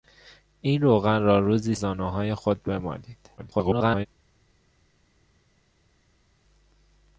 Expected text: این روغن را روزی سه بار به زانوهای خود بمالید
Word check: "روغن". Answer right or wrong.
right